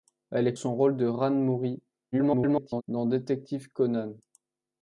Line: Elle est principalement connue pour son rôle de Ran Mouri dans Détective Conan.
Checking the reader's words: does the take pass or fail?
fail